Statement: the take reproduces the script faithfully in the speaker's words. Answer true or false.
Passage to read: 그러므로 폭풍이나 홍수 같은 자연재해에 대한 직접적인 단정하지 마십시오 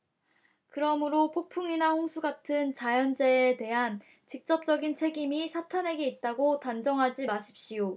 false